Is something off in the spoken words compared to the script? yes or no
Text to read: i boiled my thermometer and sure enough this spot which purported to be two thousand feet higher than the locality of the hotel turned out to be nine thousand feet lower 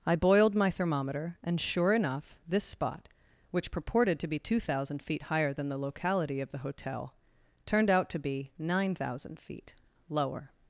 no